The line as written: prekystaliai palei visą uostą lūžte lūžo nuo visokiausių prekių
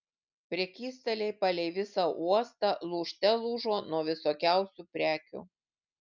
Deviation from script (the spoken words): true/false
false